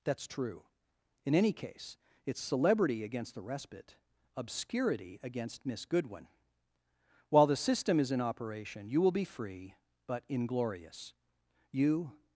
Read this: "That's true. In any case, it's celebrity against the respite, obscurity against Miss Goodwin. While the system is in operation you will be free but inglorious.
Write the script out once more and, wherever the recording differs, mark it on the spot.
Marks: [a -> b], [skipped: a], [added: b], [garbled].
"That's true. In any case, it's celebrity against the respite, obscurity against Miss Goodwin. While the system is in operation you will be free but inglorious. [added: You]